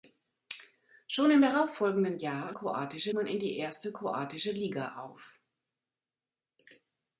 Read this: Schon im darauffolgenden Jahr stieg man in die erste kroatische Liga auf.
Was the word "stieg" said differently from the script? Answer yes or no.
yes